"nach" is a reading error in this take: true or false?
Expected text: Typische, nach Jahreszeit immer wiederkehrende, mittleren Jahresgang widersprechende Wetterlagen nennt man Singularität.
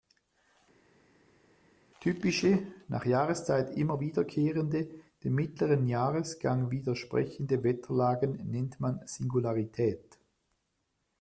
false